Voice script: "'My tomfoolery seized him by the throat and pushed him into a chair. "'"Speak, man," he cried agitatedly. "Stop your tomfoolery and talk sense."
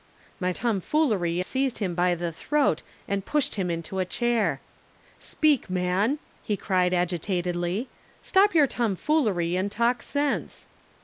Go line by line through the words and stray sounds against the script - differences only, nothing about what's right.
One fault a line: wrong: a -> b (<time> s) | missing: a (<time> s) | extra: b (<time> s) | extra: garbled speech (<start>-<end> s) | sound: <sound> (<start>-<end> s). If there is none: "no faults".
no faults